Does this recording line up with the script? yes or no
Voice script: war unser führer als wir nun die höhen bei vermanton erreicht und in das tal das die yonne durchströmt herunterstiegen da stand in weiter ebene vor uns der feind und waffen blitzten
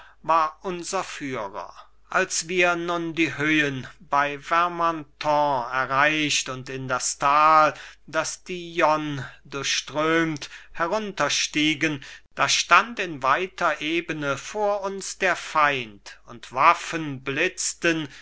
yes